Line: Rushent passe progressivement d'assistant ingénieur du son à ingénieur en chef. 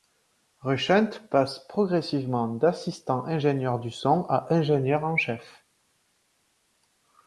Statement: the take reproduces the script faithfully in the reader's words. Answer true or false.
true